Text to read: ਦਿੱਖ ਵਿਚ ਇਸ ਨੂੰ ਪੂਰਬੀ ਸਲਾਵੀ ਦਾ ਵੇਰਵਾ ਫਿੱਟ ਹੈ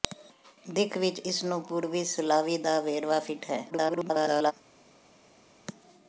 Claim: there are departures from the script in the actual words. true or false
true